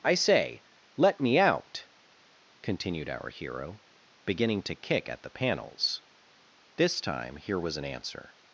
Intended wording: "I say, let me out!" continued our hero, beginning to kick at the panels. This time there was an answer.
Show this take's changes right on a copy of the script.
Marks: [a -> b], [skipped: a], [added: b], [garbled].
"I say, let me out!" continued our hero, beginning to kick at the panels. This time [there -> here] was an answer.